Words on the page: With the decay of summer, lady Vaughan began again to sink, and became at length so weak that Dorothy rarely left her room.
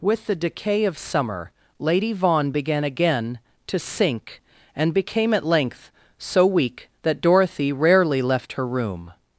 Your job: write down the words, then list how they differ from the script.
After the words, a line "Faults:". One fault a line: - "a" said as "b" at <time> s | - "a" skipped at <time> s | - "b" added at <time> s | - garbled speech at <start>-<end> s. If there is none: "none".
With the decay of summer, lady Vaughan began again to sink, and became at length so weak that Dorothy rarely left her room.
Faults:
none